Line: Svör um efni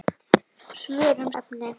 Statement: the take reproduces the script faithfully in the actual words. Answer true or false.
true